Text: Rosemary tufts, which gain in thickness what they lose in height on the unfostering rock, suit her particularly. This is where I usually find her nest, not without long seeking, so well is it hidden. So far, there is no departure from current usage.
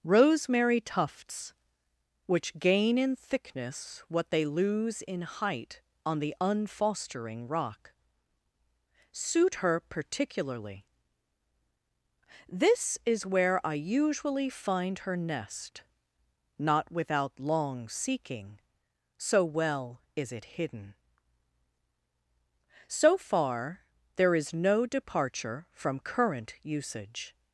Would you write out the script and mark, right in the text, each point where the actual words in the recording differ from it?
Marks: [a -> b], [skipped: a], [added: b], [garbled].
Rosemary tufts, which gain in thickness what they lose in height on the unfostering rock, suit her particularly. This is where I usually find her nest, not without long seeking, so well is it hidden. So far, there is no departure from current usage.